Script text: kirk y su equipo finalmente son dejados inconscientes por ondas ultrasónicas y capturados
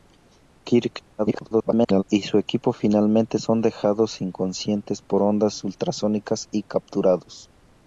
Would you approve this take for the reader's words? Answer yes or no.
no